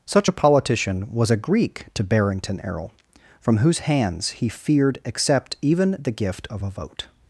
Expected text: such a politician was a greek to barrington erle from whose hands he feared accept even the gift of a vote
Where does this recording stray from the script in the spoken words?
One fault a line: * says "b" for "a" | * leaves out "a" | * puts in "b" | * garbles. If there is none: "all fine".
all fine